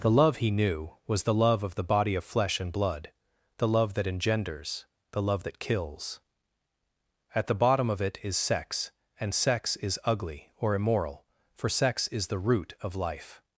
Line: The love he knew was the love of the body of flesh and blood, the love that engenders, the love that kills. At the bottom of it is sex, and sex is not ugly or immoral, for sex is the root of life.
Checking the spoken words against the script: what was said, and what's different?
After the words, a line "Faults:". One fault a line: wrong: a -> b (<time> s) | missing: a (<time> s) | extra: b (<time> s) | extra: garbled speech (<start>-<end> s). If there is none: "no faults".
The love he knew was the love of the body of flesh and blood, the love that engenders, the love that kills. At the bottom of it is sex, and sex is ugly or immoral, for sex is the root of life.
Faults:
missing: not (10.0 s)